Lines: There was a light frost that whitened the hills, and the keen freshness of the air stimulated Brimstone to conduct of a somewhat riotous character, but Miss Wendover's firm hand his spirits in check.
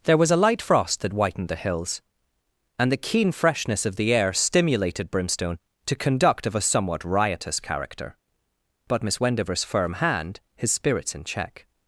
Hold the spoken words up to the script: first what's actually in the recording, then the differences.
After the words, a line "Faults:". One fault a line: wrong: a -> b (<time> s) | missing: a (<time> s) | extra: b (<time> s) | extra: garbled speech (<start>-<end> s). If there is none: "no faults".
There was a light frost that whitened the hills, and the keen freshness of the air stimulated Brimstone to conduct of a somewhat riotous character, but Miss Wendover's firm hand his spirits in check.
Faults:
no faults